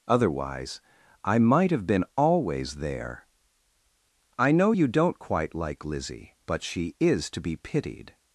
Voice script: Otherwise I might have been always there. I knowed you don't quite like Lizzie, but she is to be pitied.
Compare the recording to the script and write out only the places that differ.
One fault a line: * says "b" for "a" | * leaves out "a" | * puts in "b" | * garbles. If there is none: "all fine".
* says "know" for "knowed"